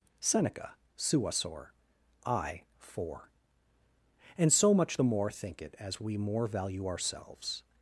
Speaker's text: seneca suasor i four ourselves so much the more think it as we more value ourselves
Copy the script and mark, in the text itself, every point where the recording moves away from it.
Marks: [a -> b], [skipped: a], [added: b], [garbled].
seneca suasor i four [ourselves -> and] so much the more think it as we more value ourselves